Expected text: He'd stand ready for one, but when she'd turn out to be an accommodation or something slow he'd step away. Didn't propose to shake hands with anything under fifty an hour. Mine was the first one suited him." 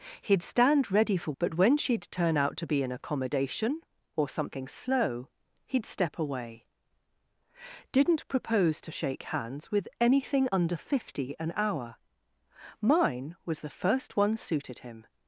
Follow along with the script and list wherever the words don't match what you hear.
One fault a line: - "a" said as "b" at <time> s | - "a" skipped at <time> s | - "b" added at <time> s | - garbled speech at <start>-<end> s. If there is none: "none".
- "one" skipped at 1.3 s